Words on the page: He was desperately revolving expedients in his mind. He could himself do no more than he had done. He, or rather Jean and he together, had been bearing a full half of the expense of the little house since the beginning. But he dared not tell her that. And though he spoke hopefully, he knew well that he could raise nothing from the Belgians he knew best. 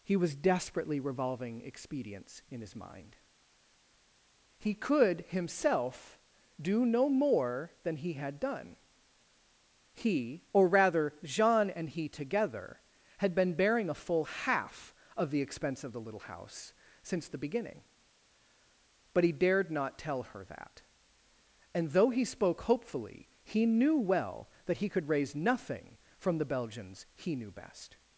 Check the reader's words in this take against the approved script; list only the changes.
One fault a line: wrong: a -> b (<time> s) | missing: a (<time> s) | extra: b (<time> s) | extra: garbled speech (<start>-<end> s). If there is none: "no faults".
no faults